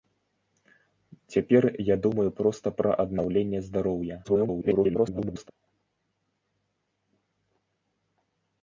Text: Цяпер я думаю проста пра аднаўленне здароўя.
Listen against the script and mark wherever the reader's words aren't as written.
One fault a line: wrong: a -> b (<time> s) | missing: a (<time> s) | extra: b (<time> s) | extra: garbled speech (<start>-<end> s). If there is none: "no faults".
extra: garbled speech (4.2-5.5 s)